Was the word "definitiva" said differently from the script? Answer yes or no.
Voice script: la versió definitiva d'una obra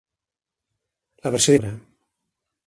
yes